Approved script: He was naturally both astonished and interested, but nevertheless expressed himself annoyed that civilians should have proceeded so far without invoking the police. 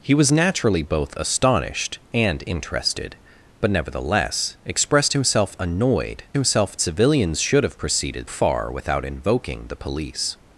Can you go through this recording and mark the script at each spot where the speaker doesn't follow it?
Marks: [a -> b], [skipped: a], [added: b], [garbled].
He was naturally both astonished and interested, but nevertheless expressed himself annoyed [that -> himself] civilians should have proceeded [skipped: so] far without invoking the police.